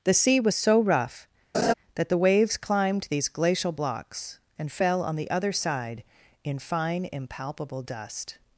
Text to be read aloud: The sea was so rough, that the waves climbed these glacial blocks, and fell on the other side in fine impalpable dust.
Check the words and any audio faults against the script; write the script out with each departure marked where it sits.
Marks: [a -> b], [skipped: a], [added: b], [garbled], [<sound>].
The sea was so rough, [laugh] that the waves climbed these glacial blocks, and fell on the other side in fine impalpable dust.